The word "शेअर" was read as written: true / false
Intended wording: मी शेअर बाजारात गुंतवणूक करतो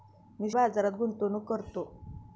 false